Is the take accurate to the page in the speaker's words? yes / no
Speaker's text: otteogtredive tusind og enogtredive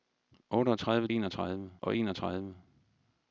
no